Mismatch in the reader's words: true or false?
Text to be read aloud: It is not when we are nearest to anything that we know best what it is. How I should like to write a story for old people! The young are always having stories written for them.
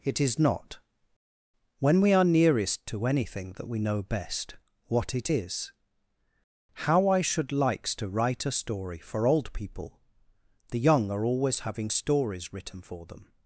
true